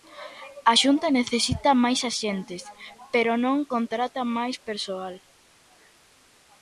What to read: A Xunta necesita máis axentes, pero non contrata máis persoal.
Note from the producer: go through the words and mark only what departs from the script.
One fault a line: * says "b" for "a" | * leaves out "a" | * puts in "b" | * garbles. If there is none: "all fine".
all fine